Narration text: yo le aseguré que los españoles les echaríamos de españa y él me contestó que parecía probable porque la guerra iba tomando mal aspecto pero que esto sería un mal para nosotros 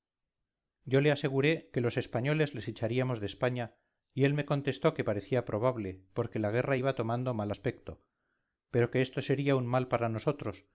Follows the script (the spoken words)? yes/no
yes